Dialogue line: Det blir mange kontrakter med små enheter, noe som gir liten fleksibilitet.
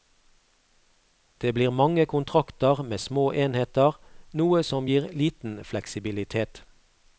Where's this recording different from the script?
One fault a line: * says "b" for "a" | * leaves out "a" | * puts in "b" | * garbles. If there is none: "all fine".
all fine